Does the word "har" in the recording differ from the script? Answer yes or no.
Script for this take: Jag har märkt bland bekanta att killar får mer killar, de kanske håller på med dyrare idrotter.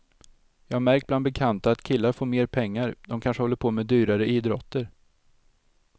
no